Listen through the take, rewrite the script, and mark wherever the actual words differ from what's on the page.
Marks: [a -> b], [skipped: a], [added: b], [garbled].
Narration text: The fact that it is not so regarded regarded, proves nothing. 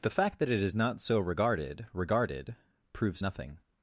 The fact that it is not so regarded regarded, proves nothing.